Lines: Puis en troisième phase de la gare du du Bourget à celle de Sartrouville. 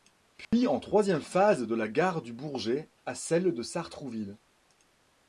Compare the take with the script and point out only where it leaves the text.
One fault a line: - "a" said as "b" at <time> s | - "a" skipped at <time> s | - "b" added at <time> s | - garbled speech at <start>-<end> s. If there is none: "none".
- "du" skipped at 2.3 s